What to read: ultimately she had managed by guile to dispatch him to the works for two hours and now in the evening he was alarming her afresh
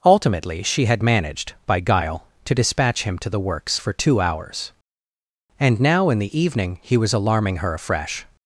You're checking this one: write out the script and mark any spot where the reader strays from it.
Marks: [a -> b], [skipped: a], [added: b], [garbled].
ultimately she had managed by guile to dispatch him to the works for two hours and now in the evening he was alarming her afresh